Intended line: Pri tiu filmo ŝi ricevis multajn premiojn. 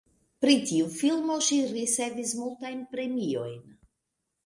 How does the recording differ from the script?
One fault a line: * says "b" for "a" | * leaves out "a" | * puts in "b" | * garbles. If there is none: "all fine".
all fine